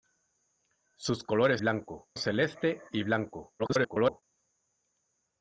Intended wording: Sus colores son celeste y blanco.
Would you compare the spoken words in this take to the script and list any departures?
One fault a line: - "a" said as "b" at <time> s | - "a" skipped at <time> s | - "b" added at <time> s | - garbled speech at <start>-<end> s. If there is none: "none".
- "son" said as "blanco" at 1.6 s
- garbled speech at 3.6-4.2 s